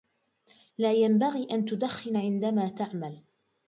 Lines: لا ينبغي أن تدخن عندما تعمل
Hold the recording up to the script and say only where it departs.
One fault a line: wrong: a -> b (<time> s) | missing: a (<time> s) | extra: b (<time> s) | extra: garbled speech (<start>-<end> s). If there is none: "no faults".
no faults